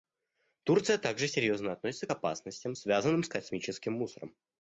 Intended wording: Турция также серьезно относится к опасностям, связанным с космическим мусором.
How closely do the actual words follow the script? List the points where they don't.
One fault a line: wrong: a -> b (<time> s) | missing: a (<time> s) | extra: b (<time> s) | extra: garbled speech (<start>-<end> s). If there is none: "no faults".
no faults